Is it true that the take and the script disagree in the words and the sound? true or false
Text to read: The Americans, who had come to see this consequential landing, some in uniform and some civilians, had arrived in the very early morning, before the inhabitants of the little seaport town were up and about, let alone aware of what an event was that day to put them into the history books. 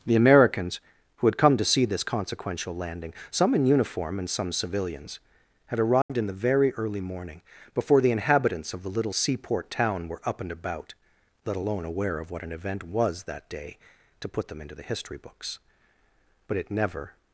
true